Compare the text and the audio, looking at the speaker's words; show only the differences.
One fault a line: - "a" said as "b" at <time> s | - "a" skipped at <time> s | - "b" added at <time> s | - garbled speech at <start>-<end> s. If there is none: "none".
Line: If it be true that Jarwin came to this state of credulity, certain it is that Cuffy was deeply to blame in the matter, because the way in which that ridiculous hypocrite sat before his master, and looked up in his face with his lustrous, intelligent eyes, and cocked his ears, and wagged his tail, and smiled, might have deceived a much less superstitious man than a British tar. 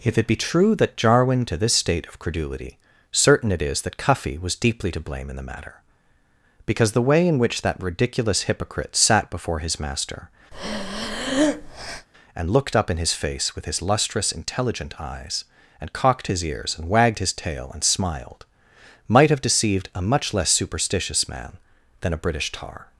- "came" skipped at 1.4 s